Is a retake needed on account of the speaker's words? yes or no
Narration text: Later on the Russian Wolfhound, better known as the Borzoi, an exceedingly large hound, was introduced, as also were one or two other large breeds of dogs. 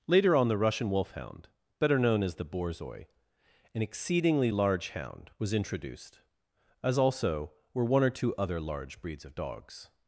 no